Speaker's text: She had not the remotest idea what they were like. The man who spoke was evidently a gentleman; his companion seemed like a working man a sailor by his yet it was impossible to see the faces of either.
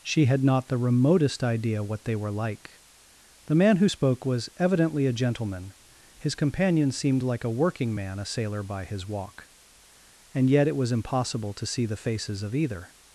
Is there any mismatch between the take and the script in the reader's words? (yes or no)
yes